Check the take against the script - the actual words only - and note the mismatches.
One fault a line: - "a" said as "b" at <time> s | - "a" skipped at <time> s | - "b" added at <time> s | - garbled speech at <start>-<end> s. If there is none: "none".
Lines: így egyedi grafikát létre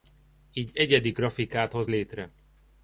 - "hoz" added at 1.7 s